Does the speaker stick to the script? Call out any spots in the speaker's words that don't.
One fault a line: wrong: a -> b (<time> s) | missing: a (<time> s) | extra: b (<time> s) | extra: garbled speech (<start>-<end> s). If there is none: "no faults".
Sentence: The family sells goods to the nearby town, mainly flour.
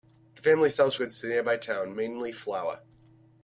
no faults